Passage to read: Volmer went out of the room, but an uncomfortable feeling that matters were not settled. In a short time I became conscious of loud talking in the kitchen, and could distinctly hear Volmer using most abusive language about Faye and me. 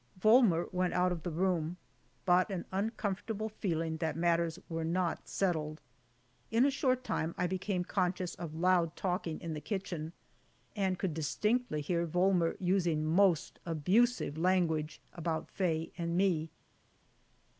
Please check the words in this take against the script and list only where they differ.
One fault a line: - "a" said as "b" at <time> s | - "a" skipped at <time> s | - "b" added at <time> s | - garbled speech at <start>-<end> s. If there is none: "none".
none